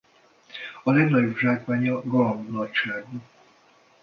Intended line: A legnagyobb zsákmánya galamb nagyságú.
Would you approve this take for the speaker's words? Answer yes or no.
yes